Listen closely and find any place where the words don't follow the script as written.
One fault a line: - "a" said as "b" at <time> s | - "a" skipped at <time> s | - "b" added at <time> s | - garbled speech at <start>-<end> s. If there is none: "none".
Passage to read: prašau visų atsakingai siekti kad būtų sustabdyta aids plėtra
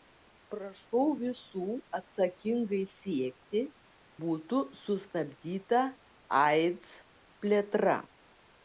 - "kad" skipped at 3.6 s